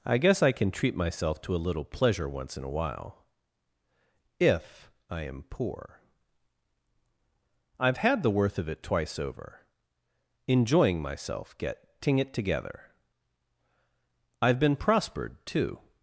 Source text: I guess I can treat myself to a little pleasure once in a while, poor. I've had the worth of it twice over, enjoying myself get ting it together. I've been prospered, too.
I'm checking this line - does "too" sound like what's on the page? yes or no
yes